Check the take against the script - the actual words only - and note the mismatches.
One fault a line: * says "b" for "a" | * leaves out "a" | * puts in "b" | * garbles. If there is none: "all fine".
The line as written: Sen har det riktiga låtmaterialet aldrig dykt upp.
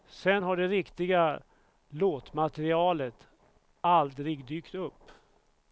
all fine